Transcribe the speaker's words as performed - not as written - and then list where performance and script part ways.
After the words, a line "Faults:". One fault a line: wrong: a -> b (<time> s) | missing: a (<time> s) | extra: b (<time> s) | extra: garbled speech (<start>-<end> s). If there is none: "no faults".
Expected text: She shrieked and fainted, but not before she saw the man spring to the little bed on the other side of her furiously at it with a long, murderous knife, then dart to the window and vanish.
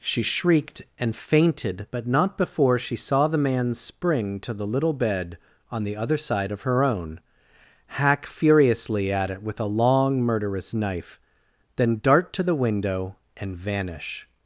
She shrieked and fainted, but not before she saw the man spring to the little bed on the other side of her own, hack furiously at it with a long, murderous knife, then dart to the window and vanish.
Faults:
extra: own hack (6.8 s)